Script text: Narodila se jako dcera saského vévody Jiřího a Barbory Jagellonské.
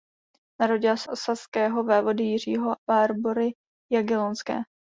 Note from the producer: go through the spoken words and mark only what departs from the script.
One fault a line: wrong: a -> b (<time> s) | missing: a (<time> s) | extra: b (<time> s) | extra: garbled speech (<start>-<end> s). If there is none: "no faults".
missing: jako dcera (1.1 s)
missing: a (2.8 s)